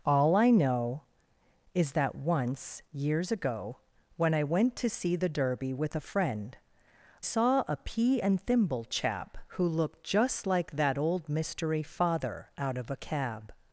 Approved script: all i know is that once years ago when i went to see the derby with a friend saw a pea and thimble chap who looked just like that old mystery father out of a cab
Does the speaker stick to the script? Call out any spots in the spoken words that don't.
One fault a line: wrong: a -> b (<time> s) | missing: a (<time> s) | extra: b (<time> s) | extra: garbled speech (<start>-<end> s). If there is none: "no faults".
no faults